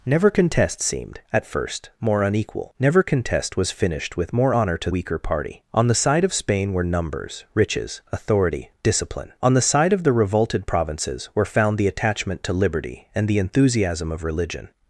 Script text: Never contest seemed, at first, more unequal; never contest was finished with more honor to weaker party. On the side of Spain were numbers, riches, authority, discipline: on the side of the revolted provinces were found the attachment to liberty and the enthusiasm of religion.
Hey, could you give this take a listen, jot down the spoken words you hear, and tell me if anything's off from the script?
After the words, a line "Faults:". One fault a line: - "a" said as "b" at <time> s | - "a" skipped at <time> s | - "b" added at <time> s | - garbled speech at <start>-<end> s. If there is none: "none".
Never contest seemed, at first, more unequal; never contest was finished with more honor to weaker party. On the side of Spain were numbers, riches, authority, discipline: on the side of the revolted provinces were found the attachment to liberty and the enthusiasm of religion.
Faults:
none